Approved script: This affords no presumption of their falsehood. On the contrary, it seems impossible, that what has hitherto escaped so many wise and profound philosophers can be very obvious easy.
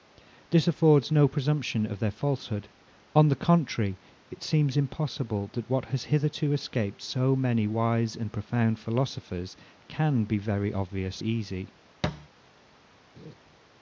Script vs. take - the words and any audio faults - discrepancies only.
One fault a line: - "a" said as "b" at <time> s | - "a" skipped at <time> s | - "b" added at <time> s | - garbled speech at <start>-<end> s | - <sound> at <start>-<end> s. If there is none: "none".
- thud at 12.0-12.3 s
- laugh at 13.2-13.3 s